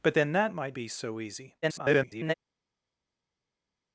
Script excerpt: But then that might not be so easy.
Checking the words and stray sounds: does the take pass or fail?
fail